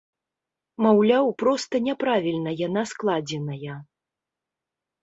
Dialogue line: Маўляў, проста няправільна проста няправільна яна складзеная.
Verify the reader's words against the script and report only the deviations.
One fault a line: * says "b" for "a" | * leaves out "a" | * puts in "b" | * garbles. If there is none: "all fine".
* leaves out "проста няправільна"